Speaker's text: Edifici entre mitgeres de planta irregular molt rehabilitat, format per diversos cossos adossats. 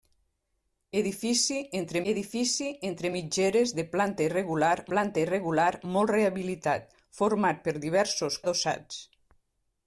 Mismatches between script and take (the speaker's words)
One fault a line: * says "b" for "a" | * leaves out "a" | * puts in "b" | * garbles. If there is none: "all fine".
* puts in "edifici entre"
* puts in "planta irregular"
* leaves out "cossos"